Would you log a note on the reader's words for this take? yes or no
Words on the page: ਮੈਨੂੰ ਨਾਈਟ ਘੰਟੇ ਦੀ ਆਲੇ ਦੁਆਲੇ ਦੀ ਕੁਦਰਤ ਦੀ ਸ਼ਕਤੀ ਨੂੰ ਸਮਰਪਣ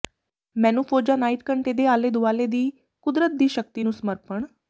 yes